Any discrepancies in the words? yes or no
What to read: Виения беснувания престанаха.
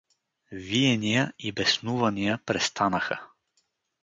yes